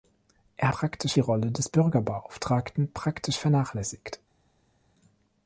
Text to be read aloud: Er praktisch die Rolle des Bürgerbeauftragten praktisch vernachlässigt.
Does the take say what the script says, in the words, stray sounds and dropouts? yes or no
yes